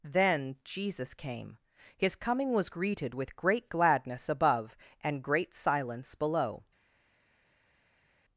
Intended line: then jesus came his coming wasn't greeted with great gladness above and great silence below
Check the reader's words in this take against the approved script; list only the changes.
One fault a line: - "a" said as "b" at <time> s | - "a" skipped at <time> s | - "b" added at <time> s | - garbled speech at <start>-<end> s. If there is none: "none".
- "wasn't" said as "was" at 2.5 s